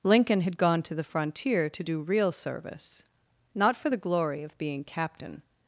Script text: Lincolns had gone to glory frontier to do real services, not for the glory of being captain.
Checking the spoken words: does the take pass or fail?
fail